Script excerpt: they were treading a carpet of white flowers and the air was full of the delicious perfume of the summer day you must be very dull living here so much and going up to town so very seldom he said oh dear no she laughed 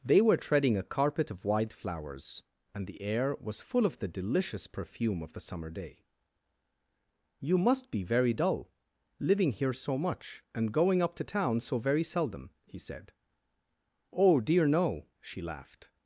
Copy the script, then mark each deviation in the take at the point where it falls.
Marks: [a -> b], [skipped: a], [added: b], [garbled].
they were treading a carpet of white flowers and the air was full of the delicious perfume of the summer day you must be very dull living here so much and going up to town so very seldom he said oh dear no she laughed